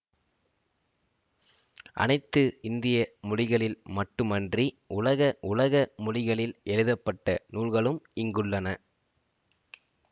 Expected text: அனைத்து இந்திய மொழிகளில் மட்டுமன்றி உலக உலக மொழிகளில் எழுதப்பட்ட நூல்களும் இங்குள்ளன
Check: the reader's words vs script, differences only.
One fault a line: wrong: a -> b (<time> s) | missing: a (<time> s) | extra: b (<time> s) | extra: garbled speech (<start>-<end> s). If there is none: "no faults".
no faults